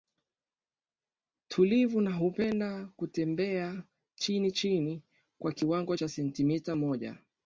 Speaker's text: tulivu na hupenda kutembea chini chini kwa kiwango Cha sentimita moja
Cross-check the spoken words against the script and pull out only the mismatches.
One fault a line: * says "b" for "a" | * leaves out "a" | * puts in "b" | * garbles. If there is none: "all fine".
all fine